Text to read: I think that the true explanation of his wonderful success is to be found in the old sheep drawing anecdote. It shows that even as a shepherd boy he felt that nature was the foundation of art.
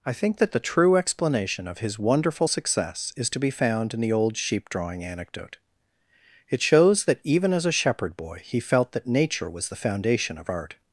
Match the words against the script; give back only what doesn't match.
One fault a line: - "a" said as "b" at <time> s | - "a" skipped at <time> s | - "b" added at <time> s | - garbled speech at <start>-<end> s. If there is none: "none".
none